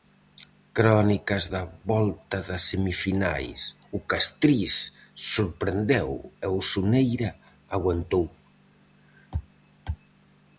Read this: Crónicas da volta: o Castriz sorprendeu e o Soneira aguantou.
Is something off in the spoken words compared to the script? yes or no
yes